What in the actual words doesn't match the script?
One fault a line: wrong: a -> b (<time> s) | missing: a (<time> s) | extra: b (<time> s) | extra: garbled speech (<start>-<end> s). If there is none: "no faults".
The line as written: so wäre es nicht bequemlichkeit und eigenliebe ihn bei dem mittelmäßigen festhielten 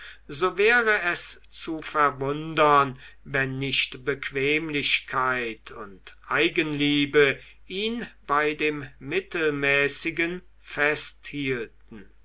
extra: zu verwundern wenn (1.5 s)